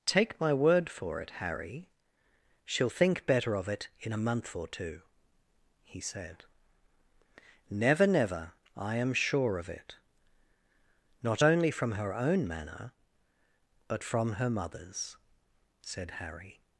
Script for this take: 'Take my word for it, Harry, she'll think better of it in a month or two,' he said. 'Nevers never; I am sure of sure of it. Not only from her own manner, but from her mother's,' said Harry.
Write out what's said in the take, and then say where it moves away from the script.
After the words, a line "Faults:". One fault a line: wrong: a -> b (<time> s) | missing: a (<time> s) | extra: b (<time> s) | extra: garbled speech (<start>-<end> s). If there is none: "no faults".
'Take my word for it, Harry, she'll think better of it in a month or two,' he said. 'Never never; I am sure of it. Not only from her own manner, but from her mother's,' said Harry.
Faults:
wrong: Nevers -> Never (7.7 s)
missing: sure of (9.7 s)